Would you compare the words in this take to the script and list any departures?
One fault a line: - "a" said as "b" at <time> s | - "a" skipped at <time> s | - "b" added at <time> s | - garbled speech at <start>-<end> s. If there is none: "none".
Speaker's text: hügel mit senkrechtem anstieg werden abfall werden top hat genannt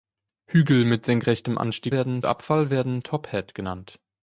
none